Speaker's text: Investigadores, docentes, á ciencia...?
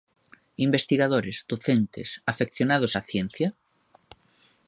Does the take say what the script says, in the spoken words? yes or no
no